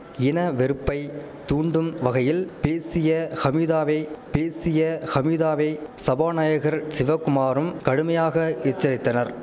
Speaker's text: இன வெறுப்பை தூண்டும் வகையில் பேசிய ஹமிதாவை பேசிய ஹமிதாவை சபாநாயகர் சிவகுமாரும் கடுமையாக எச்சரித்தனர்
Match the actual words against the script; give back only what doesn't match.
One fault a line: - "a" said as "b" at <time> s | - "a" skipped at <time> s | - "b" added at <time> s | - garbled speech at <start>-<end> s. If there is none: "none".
none